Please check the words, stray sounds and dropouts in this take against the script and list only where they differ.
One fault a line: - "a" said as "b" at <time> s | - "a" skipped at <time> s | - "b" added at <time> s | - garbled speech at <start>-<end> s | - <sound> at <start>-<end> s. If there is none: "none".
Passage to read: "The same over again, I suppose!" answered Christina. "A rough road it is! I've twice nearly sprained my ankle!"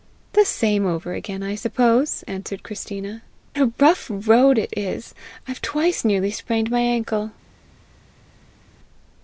none